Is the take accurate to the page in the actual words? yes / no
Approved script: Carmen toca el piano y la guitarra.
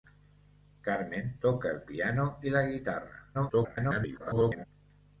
no